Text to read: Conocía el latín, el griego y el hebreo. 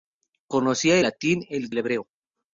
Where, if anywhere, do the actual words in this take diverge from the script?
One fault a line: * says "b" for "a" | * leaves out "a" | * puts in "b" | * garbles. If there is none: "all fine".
* leaves out "el"
* leaves out "griego y"